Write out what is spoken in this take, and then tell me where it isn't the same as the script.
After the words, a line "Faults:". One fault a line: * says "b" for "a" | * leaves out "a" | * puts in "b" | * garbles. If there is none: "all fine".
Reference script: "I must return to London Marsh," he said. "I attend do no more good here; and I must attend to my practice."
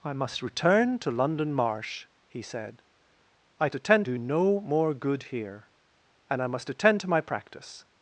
"I must return to London Marsh," he said. "I attend do no more good here; and I must attend to my practice."
Faults:
all fine